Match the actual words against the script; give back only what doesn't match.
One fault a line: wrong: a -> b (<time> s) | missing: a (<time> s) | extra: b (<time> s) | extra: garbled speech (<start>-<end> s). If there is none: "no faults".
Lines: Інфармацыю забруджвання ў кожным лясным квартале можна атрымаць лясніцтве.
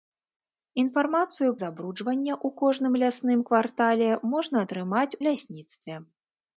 no faults